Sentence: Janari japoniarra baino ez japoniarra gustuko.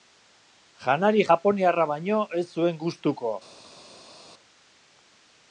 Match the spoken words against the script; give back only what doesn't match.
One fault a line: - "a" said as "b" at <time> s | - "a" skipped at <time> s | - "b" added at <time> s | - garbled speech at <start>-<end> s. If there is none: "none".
- "japoniarra" said as "zuen" at 2.6 s